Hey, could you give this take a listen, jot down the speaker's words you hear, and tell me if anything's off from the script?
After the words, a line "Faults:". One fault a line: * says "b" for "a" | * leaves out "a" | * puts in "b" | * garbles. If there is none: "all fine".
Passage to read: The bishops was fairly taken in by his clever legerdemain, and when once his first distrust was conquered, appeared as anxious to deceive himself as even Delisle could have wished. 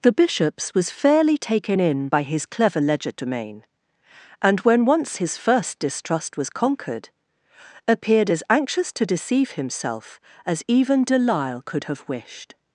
The bishops was fairly taken in by his clever legerdemain, and when once his first distrust was conquered, appeared as anxious to deceive himself as even Delisle could have wished.
Faults:
all fine